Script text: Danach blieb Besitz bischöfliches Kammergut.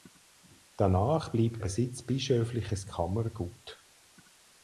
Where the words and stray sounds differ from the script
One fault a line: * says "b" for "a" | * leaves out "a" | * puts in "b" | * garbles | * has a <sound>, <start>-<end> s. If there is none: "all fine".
all fine